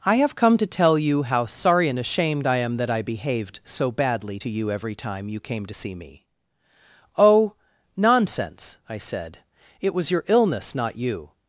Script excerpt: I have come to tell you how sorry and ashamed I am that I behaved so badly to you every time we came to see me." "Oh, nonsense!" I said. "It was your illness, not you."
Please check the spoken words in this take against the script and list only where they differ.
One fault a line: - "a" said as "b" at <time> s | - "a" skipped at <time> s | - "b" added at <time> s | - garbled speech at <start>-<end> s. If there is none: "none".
- "we" said as "you" at 5.3 s